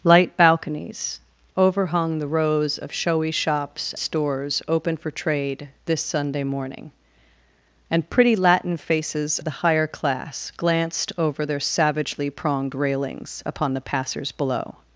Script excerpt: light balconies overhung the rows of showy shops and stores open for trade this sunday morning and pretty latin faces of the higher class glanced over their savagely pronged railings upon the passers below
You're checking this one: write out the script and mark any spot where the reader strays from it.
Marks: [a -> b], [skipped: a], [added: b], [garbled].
light balconies overhung the rows of showy shops [skipped: and] stores open for trade this sunday morning and pretty latin faces [skipped: of] the higher class glanced over their savagely pronged railings upon the passers below